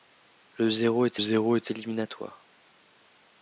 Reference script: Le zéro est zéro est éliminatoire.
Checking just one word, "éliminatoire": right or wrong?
right